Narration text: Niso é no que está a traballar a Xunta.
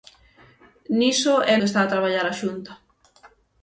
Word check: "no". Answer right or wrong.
wrong